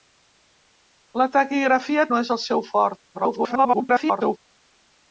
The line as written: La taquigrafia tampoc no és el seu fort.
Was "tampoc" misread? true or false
true